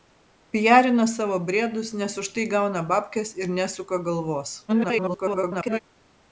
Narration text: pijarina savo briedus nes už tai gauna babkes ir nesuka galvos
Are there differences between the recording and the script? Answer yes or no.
yes